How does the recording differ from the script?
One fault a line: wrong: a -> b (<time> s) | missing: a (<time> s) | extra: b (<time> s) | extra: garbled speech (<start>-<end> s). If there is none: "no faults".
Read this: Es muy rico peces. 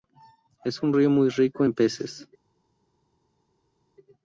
extra: un río (0.8 s)
extra: en (1.6 s)